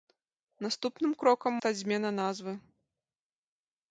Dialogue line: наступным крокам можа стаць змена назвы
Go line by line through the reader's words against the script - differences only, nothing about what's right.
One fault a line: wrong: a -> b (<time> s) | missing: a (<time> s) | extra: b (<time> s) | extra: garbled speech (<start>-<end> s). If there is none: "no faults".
missing: можа (1.5 s)